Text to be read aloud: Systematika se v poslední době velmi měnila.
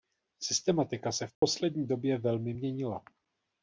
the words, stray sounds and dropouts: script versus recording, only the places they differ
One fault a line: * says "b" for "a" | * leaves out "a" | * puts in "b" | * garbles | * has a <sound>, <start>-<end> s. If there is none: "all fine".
* has a dropout, 1.3-1.4 s